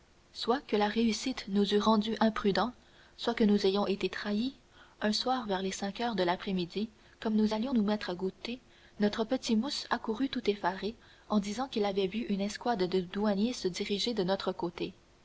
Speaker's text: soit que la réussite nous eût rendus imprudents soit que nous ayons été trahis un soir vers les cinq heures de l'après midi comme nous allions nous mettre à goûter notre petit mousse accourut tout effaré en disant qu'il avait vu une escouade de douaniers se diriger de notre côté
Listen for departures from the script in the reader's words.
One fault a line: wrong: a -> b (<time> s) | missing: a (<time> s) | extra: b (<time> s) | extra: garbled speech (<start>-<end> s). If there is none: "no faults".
no faults